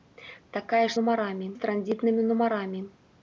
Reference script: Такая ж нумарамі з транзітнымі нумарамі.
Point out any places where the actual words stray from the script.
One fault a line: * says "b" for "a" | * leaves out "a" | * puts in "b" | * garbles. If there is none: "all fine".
all fine